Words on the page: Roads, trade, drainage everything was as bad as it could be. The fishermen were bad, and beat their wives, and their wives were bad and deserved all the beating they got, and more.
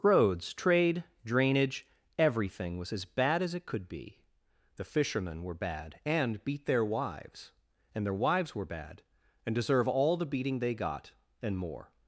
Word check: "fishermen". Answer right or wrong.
right